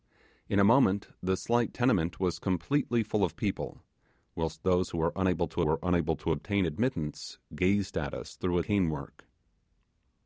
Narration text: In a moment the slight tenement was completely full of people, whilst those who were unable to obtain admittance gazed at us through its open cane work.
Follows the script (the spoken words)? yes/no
no